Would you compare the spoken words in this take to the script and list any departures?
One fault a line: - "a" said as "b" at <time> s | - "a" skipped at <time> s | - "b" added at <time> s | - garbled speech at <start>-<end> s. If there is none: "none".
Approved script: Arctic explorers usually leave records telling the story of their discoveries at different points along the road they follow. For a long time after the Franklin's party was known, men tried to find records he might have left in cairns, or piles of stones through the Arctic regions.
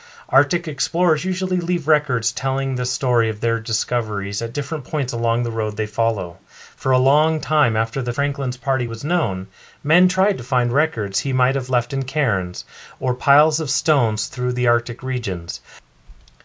none